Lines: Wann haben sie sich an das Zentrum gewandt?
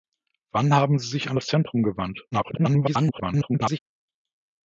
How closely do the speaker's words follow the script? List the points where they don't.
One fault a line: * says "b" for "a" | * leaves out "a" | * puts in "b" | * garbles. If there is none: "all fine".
* garbles